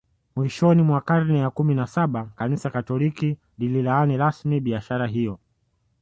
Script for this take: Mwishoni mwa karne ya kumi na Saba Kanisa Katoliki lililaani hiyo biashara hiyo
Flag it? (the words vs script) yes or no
yes